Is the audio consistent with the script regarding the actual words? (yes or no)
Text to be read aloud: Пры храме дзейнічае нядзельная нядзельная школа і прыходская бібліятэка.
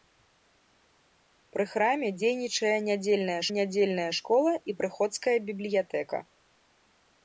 yes